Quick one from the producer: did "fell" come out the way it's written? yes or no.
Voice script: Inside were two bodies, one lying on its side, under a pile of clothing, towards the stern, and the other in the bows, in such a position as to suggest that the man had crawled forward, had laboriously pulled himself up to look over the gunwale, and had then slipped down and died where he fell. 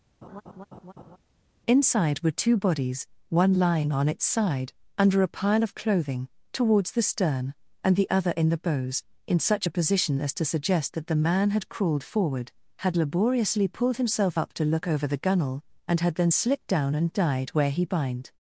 no